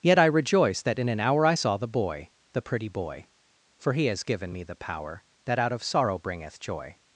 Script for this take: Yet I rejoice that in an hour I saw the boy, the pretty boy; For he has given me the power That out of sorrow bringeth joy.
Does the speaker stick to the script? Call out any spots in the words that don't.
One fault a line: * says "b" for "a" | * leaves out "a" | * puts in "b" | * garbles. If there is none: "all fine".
all fine